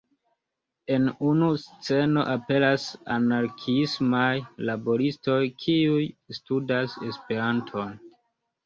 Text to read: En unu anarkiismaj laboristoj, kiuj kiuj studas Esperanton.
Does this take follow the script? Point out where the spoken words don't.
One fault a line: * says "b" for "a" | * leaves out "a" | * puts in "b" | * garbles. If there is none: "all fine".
* puts in "sceno aperas"
* leaves out "kiuj"